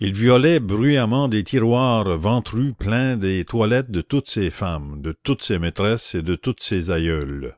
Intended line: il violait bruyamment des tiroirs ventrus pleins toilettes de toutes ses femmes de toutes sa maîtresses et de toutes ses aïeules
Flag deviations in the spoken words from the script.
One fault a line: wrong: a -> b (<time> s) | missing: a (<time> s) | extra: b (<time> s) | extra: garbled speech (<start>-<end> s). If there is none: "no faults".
extra: des (3.2 s)
wrong: sa -> ses (5.4 s)